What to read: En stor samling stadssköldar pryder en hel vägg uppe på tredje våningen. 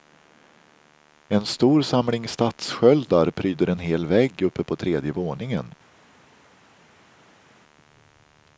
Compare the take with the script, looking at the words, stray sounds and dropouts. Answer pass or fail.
pass